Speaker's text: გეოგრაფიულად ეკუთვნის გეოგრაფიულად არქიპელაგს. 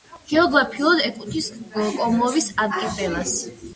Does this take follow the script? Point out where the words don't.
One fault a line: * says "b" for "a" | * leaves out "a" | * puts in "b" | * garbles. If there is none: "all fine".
* says "კომორის" for "გეოგრაფიულად"